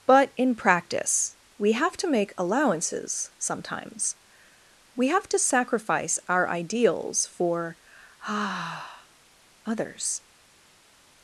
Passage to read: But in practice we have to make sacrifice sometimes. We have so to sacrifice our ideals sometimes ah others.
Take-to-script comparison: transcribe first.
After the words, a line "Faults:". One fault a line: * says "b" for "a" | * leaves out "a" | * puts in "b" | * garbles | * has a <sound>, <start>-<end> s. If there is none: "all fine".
But in practice we have to make allowances sometimes. We have to sacrifice our ideals for ah others.
Faults:
* says "allowances" for "sacrifice"
* leaves out "so"
* says "for" for "sometimes"